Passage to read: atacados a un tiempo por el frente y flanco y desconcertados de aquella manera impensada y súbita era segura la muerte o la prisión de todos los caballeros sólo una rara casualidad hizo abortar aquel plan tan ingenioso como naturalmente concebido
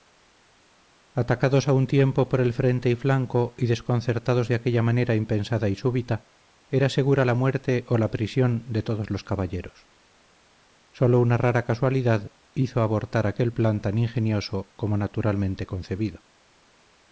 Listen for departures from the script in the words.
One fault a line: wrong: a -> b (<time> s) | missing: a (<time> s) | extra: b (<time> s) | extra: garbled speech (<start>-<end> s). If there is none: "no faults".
no faults